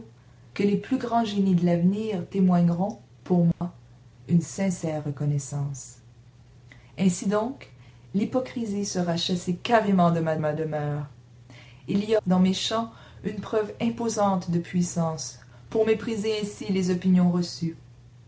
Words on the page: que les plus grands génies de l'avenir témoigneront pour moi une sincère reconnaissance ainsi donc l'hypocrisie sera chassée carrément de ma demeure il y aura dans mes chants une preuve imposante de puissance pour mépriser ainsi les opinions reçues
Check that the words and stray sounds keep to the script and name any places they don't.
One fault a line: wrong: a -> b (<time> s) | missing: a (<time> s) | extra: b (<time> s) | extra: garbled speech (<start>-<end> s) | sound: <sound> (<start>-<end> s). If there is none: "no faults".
sound: dropout (3.5-3.6 s)
extra: ma (10.4 s)
missing: aura (12.2 s)